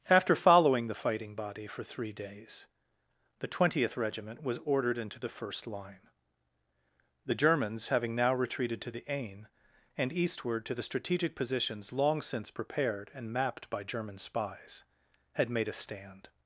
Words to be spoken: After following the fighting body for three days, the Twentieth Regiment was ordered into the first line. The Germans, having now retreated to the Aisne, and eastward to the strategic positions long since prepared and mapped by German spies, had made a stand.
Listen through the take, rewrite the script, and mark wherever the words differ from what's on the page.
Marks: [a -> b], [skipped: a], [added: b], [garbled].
After following the fighting body for three days, the Twentieth Regiment was ordered into the first line. The Germans, having now retreated to the Aisne, and eastward to the strategic positions long since prepared and mapped by German spies, had made a stand.